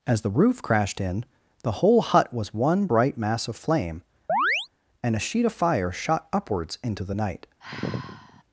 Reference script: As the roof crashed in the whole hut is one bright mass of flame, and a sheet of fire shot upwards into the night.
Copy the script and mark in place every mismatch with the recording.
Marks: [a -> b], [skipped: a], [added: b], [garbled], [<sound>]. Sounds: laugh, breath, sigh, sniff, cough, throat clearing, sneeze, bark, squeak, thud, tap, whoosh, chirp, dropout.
As the roof crashed in the whole hut [is -> was] one bright mass of flame, [chirp] and a sheet of fire shot upwards into the night. [sigh]